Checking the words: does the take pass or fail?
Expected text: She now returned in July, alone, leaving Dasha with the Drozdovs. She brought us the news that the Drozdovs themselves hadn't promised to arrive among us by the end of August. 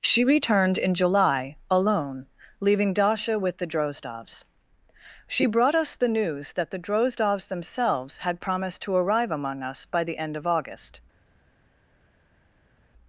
fail